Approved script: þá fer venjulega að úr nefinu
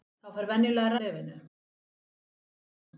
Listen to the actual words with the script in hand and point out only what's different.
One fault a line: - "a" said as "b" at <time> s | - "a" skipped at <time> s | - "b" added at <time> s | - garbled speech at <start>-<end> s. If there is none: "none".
none